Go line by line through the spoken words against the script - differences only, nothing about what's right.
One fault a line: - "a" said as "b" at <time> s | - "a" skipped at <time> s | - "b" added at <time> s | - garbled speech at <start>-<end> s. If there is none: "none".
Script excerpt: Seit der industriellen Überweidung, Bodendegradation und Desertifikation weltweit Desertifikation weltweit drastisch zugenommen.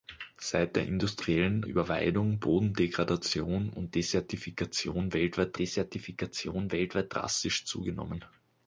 none